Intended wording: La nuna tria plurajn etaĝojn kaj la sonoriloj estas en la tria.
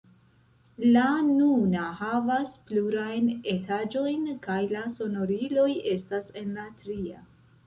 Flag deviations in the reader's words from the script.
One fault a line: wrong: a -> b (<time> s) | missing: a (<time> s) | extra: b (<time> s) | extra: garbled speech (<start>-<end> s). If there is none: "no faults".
wrong: tria -> havas (2.0 s)